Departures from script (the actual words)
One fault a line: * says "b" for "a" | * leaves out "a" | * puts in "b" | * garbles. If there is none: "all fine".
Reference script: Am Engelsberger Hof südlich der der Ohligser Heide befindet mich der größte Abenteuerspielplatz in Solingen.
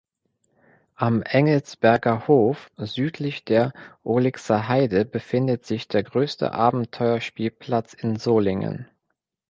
* leaves out "der"
* says "sich" for "mich"